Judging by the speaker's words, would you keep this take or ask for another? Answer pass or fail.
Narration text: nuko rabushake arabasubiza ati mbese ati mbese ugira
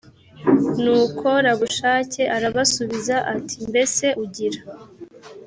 fail